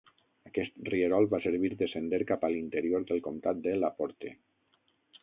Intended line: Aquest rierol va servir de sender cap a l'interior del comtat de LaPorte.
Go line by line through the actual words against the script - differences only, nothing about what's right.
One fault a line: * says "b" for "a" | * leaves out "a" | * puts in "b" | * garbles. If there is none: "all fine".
all fine